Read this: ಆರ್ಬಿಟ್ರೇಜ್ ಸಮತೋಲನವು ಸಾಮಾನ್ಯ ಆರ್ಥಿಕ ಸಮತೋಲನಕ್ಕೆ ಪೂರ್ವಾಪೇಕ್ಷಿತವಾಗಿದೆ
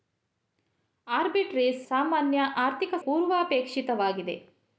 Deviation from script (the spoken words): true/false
true